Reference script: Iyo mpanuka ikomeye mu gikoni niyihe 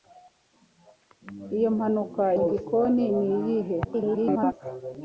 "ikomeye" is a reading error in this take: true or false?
true